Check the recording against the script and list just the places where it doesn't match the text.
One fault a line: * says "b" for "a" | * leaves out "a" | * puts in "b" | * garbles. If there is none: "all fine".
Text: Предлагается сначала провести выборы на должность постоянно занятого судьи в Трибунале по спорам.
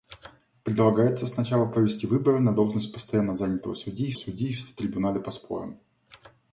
* puts in "судьи"